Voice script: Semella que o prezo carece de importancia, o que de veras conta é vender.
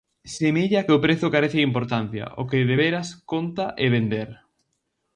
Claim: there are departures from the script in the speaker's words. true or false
false